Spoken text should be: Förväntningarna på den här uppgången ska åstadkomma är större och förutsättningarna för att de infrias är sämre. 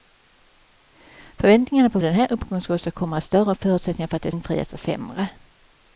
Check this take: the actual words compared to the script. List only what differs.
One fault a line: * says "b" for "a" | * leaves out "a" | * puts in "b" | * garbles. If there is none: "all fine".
all fine